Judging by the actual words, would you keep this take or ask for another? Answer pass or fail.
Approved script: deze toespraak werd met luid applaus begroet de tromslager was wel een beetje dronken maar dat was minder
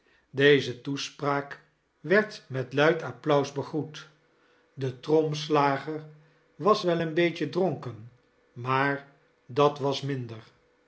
pass